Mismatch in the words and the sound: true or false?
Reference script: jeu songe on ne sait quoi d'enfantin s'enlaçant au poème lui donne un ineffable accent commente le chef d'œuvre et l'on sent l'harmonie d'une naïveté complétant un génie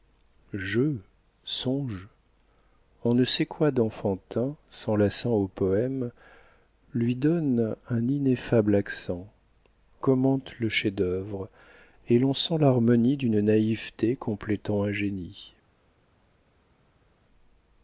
false